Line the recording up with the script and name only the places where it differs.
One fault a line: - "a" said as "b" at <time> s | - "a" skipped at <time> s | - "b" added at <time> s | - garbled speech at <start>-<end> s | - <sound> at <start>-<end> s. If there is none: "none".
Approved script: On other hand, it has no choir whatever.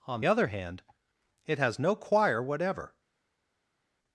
none